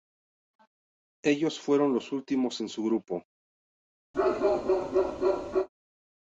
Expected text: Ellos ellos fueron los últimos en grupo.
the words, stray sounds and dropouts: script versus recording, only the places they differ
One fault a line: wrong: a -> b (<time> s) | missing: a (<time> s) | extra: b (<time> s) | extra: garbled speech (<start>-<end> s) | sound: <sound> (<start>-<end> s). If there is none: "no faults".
missing: ellos (1.6 s)
extra: su (2.7 s)
sound: bark (4.1-5.7 s)